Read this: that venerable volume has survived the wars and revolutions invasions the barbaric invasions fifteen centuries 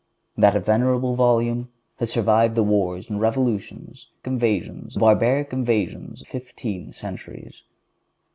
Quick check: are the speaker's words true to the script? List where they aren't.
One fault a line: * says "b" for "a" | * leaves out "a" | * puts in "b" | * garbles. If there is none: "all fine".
all fine